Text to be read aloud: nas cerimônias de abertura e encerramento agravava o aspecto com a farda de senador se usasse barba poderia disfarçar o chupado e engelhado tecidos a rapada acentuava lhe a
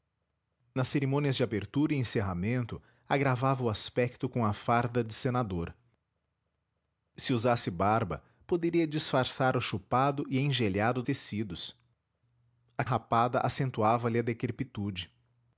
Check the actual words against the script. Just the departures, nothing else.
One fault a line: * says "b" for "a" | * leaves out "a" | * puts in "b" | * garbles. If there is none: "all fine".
all fine